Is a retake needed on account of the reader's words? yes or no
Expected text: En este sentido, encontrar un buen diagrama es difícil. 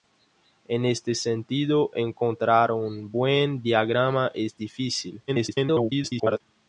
yes